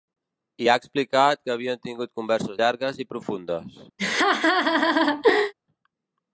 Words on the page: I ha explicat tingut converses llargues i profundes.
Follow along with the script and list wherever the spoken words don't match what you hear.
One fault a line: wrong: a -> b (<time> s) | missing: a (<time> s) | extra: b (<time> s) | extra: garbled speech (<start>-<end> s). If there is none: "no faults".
extra: que havien (1.4 s)